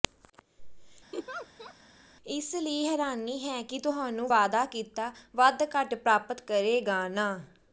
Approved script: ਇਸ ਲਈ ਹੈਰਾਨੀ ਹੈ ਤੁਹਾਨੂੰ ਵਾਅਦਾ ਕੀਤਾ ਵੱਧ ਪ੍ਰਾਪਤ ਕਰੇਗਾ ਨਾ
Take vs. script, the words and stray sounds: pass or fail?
fail